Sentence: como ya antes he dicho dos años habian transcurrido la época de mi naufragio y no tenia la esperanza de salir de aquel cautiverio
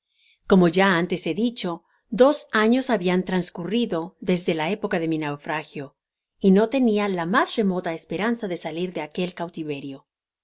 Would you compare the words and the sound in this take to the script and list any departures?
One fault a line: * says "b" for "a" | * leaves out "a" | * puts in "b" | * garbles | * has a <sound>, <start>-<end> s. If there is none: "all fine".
* puts in "desde"
* puts in "mas remota"